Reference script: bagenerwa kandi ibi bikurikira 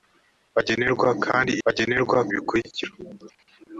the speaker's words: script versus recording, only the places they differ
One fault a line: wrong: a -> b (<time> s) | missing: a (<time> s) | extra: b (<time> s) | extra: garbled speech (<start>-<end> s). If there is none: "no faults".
wrong: ibi -> bagenerwa (1.6 s)